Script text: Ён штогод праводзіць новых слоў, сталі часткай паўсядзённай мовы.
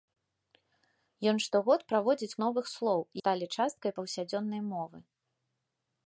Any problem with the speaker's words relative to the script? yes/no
no